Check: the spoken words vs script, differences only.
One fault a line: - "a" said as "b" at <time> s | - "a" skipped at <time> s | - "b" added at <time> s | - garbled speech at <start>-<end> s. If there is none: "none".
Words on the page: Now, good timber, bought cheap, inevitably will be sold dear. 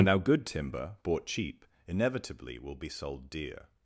none